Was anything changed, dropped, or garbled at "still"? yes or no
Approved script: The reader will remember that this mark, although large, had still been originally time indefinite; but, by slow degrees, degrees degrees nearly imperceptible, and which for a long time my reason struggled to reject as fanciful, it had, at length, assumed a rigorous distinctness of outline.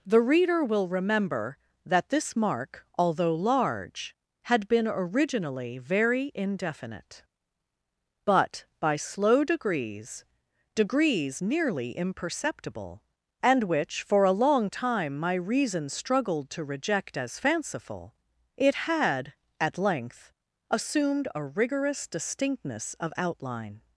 yes